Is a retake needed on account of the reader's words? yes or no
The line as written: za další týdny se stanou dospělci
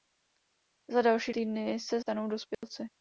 no